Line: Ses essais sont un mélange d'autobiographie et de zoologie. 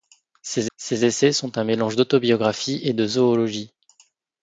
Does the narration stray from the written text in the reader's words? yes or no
yes